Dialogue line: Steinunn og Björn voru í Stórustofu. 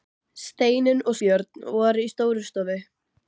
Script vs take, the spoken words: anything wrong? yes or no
no